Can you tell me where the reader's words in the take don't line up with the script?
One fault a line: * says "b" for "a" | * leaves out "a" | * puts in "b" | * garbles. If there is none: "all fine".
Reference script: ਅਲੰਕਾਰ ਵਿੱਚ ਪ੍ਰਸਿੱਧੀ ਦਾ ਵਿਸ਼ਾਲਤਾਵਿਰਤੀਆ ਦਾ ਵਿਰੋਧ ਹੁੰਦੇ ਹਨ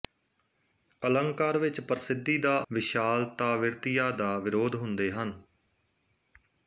all fine